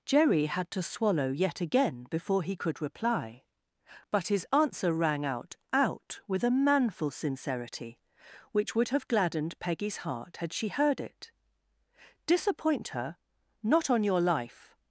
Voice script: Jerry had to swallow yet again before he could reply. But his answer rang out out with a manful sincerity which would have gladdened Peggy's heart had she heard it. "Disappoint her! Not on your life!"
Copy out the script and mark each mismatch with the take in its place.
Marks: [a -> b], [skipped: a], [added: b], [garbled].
Jerry had to swallow yet again before he could reply. But his answer rang out out with a manful sincerity which would have gladdened Peggy's heart had she heard it. "Disappoint her! Not on your life!"